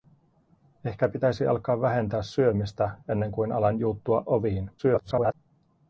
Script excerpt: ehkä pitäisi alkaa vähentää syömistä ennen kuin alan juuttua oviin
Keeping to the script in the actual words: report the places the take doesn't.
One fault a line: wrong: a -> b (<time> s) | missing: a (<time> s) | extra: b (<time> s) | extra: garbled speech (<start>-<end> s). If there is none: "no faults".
extra: garbled speech (4.8-5.3 s)